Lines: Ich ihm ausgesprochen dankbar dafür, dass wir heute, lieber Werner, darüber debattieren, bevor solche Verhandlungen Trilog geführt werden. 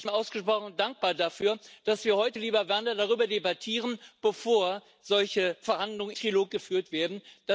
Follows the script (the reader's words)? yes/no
yes